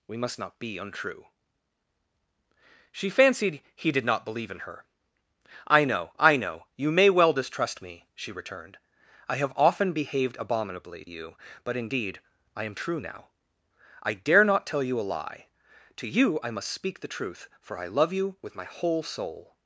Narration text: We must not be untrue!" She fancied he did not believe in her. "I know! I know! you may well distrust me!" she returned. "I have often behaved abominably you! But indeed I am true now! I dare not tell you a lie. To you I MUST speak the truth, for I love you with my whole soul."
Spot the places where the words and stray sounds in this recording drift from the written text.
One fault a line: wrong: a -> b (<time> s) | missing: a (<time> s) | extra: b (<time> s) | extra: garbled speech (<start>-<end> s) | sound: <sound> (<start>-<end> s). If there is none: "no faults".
no faults